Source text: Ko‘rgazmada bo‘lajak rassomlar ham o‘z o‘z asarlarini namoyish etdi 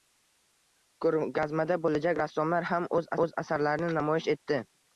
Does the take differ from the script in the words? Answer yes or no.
no